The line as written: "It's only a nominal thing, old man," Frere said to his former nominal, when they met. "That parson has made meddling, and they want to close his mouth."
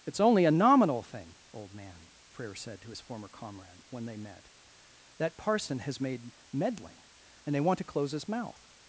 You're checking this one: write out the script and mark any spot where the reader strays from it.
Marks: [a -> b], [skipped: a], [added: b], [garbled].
"It's only a nominal thing, old man," Frere said to his former [nominal, -> comrade] when they met. "That parson has made meddling, and they want to close his mouth."